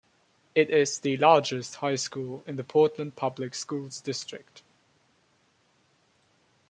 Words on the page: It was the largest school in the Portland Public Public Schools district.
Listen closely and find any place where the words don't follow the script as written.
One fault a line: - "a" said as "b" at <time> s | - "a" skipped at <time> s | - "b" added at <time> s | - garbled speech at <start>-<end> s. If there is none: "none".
- "was" said as "is" at 0.7 s
- "high" added at 1.8 s
- "Public" skipped at 3.5 s